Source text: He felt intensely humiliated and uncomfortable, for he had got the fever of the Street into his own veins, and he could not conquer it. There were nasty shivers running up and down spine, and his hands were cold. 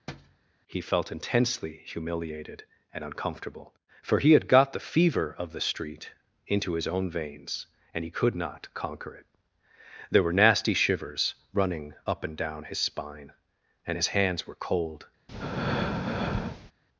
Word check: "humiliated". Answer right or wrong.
right